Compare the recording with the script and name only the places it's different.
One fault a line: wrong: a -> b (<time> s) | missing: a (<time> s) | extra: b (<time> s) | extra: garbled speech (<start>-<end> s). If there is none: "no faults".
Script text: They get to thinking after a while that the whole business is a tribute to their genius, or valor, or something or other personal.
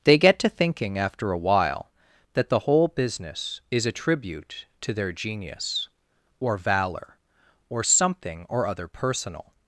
no faults